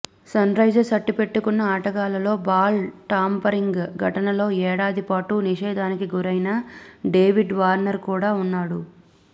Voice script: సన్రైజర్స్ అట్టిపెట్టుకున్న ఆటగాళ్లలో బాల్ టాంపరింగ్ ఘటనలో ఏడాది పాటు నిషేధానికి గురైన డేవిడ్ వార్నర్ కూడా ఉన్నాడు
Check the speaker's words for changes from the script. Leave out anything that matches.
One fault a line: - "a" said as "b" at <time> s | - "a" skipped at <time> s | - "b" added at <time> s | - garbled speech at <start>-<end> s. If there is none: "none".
none